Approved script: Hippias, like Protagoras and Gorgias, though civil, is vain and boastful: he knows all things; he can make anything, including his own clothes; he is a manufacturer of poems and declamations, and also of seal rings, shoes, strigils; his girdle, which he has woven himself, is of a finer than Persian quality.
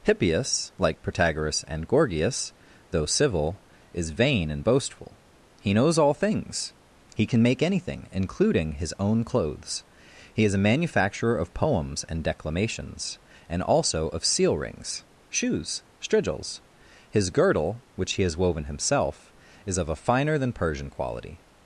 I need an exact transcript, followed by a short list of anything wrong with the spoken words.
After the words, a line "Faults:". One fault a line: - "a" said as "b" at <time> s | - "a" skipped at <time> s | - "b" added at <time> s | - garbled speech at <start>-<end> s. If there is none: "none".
Hippias, like Protagoras and Gorgias, though civil, is vain and boastful: he knows all things; he can make anything, including his own clothes; he is a manufacturer of poems and declamations, and also of seal rings, shoes, strigils; his girdle, which he has woven himself, is of a finer than Persian quality.
Faults:
none